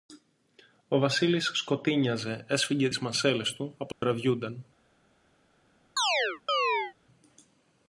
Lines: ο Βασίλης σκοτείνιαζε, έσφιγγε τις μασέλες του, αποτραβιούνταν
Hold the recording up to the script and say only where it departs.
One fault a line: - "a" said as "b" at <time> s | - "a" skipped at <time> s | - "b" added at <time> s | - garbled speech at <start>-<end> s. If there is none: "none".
none